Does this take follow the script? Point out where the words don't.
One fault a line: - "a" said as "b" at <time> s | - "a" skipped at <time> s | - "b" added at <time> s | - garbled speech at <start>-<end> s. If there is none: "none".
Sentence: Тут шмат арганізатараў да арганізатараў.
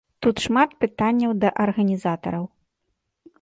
- "арганізатараў" said as "пытанняў" at 0.8 s